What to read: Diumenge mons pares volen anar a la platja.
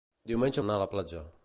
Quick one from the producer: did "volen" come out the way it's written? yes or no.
no